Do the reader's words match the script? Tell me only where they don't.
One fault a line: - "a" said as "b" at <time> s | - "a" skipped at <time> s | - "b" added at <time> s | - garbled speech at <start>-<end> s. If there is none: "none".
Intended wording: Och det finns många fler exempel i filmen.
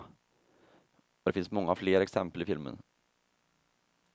none